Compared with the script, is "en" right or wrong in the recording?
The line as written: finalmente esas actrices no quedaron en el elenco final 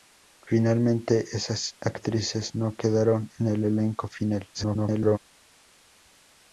right